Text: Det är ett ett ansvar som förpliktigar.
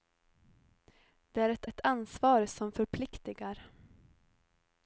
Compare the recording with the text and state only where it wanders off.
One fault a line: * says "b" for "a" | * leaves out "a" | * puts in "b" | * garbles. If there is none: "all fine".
all fine